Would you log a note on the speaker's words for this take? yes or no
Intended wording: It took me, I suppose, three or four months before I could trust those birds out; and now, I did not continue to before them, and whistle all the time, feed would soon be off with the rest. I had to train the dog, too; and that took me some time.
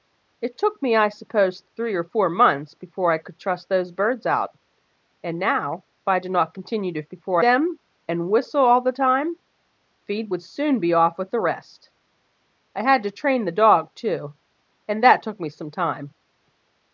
no